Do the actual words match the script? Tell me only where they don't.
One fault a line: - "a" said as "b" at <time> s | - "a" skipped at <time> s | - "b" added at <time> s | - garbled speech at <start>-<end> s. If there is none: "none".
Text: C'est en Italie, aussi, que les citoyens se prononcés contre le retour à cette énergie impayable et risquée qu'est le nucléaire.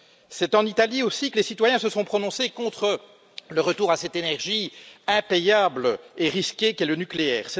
- "sont" added at 1.9 s